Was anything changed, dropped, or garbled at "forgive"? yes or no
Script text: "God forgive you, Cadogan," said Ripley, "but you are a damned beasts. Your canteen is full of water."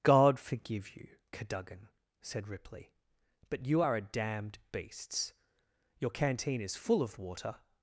no